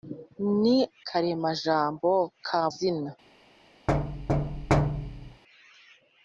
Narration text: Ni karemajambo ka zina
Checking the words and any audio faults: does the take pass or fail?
fail